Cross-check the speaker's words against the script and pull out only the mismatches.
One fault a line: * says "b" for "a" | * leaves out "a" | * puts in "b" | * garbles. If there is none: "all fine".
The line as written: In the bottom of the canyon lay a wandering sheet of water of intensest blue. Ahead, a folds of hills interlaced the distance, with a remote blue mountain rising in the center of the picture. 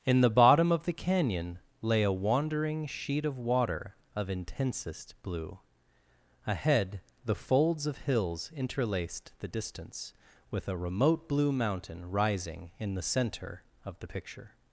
* says "the" for "a"